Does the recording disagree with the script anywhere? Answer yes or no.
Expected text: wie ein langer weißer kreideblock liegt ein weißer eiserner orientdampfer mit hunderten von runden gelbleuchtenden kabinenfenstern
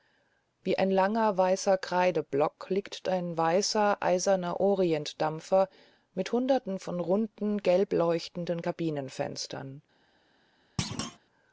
no